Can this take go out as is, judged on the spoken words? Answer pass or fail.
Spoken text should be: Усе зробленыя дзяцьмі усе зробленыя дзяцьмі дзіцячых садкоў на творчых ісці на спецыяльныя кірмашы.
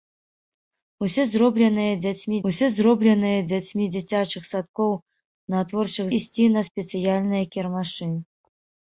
pass